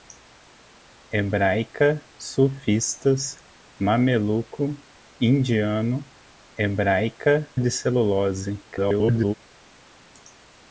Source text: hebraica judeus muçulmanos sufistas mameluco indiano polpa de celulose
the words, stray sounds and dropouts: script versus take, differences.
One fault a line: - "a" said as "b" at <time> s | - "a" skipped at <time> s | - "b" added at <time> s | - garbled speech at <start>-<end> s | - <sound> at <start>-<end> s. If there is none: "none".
- "judeus muçulmanos" skipped at 2.0 s
- "polpa" said as "hebraica" at 6.6 s
- garbled speech at 8.7-9.3 s